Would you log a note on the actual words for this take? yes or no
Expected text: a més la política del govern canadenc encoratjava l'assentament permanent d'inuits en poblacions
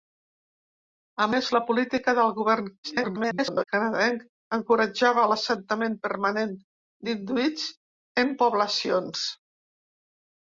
yes